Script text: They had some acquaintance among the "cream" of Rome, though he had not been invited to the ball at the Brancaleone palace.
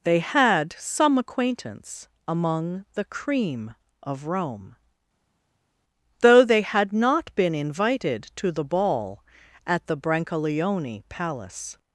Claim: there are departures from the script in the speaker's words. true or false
true